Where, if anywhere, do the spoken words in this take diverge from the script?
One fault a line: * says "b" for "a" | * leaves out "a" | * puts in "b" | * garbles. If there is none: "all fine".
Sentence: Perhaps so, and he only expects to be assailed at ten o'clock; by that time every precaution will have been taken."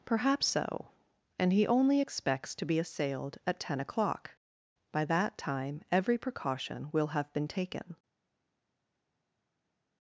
all fine